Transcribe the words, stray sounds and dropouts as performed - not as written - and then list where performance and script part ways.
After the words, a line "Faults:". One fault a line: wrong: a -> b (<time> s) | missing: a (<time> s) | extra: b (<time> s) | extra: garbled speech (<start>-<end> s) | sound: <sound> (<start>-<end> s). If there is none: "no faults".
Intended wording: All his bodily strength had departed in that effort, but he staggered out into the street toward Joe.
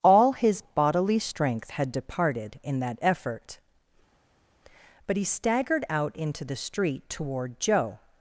All his bodily strength had departed in that effort, but he staggered out into the street toward Joe.
Faults:
no faults